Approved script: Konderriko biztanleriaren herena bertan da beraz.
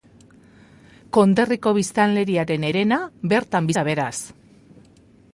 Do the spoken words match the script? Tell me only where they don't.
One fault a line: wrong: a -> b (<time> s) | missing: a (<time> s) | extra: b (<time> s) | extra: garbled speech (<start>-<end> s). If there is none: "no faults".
no faults